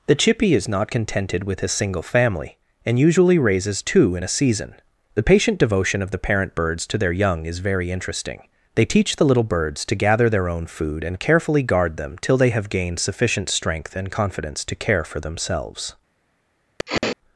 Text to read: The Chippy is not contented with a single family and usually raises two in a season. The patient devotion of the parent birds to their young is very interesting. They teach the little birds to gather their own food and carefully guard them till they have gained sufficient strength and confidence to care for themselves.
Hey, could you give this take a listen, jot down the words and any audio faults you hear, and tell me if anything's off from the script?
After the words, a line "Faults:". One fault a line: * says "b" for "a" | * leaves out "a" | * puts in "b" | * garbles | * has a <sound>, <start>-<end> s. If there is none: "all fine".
The Chippy is not contented with a single family and usually raises two in a season. The patient devotion of the parent birds to their young is very interesting. They teach the little birds to gather their own food and carefully guard them till they have gained sufficient strength and confidence to care for themselves.
Faults:
* has a sniff, 16.8-17.2 s